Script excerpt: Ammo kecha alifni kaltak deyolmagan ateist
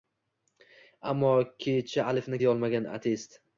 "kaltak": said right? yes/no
no